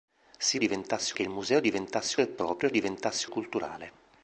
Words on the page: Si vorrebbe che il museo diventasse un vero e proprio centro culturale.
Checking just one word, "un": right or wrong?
wrong